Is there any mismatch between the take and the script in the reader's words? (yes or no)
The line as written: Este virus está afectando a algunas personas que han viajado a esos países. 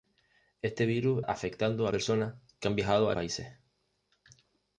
yes